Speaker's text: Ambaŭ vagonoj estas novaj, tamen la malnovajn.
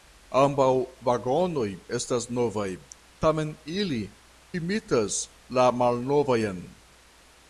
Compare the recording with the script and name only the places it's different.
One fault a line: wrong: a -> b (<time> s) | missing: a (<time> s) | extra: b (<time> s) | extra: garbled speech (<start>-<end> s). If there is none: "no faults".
extra: ili imitas (3.8 s)